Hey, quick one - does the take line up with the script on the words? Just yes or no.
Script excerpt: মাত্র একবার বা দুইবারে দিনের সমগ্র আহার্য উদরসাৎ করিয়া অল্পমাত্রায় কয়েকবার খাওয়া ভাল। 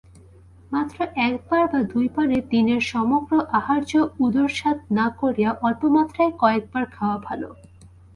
no